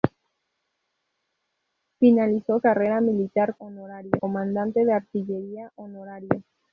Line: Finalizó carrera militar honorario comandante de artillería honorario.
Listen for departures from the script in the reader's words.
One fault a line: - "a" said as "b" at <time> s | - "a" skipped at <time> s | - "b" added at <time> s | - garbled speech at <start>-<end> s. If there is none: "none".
none